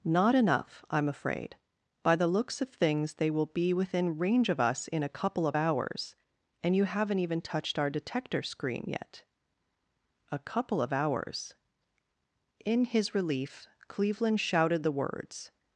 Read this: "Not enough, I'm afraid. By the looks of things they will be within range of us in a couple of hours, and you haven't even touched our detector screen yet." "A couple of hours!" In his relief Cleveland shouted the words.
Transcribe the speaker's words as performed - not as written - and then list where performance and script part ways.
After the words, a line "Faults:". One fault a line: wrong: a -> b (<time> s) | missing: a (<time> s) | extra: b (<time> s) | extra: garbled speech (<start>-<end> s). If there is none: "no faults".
"Not enough, I'm afraid. By the looks of things they will be within range of us in a couple of hours, and you haven't even touched our detector screen yet." "A couple of hours!" In his relief Cleveland shouted the words.
Faults:
no faults